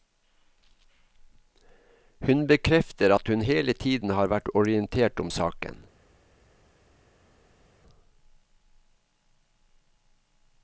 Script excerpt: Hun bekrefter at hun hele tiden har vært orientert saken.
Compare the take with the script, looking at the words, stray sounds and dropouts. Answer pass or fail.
fail